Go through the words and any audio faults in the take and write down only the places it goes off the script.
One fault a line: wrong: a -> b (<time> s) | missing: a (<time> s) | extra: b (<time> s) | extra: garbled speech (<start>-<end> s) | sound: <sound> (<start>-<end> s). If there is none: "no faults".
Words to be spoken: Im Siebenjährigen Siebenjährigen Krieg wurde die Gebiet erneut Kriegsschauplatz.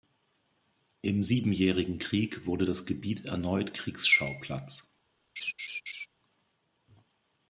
missing: Siebenjährigen (2.0 s)
wrong: die -> das (2.6 s)
sound: laugh (5.4-6.1 s)